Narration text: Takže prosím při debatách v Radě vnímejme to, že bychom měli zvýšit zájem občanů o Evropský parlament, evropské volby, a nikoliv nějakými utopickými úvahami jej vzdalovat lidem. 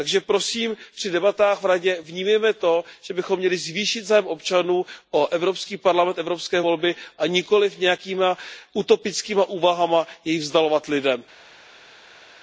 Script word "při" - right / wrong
right